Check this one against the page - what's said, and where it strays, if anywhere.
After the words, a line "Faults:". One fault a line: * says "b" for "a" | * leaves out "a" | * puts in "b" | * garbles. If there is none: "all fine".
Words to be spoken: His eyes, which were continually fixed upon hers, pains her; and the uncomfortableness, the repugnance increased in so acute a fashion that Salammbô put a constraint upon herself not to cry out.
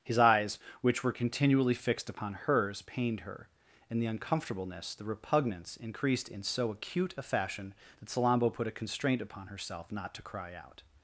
His eyes, which were continually fixed upon hers, pained her; and the uncomfortableness, the repugnance increased in so acute a fashion that Salammbô put a constraint upon herself not to cry out.
Faults:
* says "pained" for "pains"